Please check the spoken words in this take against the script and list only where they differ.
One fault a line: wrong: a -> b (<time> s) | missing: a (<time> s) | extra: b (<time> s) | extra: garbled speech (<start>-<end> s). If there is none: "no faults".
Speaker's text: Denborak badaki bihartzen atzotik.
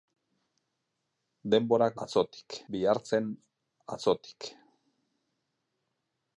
wrong: badaki -> atzotik (2.1 s)